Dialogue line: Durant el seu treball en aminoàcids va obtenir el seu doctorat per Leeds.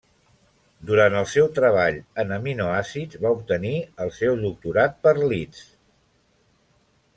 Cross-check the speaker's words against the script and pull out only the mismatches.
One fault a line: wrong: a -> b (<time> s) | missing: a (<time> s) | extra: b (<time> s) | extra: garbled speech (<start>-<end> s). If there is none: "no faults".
no faults